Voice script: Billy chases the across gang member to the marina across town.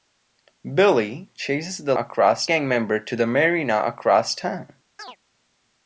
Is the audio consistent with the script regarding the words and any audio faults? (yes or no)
no